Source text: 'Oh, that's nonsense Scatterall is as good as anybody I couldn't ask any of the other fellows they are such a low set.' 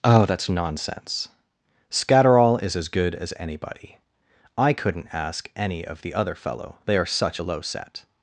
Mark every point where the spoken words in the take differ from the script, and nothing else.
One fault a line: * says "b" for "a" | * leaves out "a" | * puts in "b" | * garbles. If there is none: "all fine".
* says "fellow" for "fellows"